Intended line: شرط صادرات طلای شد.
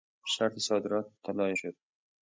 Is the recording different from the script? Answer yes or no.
no